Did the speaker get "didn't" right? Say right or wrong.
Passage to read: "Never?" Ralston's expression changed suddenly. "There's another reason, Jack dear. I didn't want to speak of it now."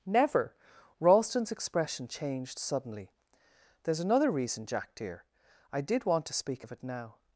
wrong